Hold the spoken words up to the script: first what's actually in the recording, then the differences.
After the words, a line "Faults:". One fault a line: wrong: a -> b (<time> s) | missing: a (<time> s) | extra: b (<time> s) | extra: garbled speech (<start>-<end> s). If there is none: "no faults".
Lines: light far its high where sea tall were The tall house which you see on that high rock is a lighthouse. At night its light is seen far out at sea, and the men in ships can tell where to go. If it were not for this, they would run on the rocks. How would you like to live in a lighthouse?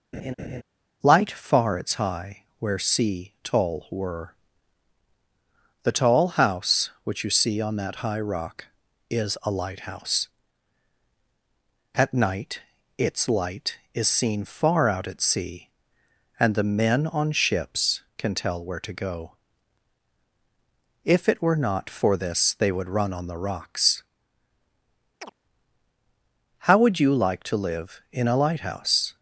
light far its high where sea tall were The tall house which you see on that high rock is a lighthouse. At night its light is seen far out at sea, and the men on ships can tell where to go. If it were not for this, they would run on the rocks. How would you like to live in a lighthouse?
Faults:
wrong: in -> on (17.1 s)